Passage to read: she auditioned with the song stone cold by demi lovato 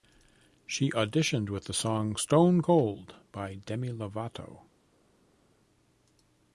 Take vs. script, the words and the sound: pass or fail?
pass